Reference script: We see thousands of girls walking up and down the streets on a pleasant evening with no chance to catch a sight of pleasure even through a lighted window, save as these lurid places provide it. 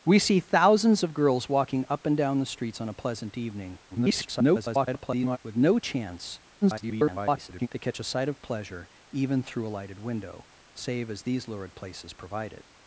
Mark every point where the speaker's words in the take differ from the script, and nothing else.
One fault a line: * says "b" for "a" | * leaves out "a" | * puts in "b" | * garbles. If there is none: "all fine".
* garbles
* garbles